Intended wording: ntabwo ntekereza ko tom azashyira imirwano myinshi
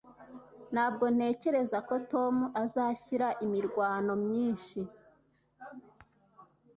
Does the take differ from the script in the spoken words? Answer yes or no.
no